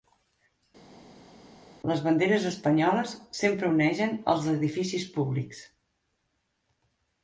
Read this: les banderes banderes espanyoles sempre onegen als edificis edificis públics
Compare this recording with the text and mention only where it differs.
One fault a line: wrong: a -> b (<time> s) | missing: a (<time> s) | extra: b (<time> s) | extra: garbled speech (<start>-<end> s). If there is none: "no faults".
missing: banderes (2.5 s)
missing: edificis (5.1 s)